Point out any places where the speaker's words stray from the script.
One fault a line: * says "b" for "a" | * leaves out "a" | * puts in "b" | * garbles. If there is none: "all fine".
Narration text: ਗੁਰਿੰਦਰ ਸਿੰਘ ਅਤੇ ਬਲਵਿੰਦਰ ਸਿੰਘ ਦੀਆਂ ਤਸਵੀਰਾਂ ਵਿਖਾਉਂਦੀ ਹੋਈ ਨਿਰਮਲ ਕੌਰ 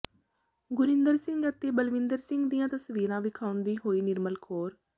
all fine